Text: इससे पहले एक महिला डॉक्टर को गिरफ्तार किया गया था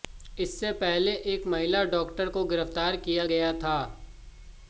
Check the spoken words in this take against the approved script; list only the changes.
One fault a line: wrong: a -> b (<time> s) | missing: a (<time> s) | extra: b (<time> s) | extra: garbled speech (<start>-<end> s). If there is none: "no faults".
no faults